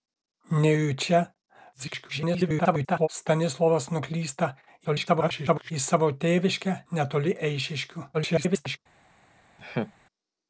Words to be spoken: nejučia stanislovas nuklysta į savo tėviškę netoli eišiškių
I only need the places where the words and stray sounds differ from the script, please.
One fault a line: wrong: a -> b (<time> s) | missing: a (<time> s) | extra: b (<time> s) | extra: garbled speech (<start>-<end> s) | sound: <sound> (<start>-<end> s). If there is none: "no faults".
extra: garbled speech (1.7-3.1 s)
extra: garbled speech (4.8-5.7 s)
extra: garbled speech (8.1-8.8 s)
sound: laugh (9.6-9.9 s)